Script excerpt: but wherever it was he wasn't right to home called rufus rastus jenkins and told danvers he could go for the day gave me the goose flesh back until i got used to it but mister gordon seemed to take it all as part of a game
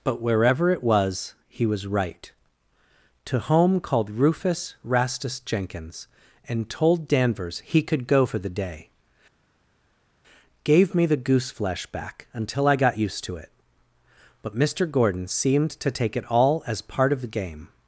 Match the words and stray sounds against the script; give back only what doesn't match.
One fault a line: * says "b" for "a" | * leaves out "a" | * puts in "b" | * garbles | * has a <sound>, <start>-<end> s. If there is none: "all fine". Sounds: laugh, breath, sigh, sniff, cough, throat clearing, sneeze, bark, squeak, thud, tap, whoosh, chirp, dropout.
* says "was" for "wasn't"
* says "the" for "a"